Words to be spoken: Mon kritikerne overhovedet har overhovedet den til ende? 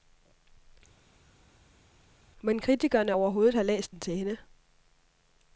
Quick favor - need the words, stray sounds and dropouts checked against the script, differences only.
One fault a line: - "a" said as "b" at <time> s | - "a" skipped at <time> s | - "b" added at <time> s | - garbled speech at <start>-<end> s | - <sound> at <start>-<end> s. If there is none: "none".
- "overhovedet" said as "læst" at 3.6 s